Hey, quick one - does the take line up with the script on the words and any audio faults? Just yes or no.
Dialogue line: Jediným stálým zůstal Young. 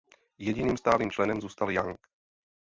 no